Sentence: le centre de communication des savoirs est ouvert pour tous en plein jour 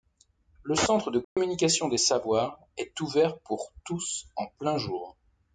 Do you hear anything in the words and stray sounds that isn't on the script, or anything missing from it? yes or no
yes